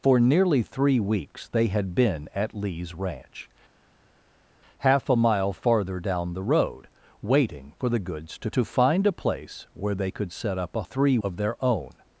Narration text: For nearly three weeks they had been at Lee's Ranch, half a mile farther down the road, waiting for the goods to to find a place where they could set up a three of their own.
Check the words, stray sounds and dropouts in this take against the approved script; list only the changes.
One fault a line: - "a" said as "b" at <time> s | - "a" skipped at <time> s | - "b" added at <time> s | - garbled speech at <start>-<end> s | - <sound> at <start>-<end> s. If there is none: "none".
none